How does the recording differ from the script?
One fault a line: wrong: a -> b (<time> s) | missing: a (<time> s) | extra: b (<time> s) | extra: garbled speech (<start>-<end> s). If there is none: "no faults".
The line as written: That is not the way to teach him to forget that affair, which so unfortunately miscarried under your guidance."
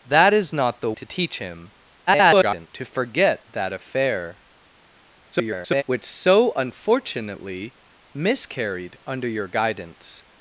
missing: way (0.9 s)
extra: garbled speech (2.1-2.7 s)
extra: garbled speech (5.3-5.8 s)